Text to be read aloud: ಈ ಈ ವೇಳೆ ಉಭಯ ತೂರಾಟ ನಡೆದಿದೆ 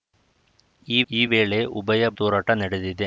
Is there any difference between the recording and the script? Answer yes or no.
no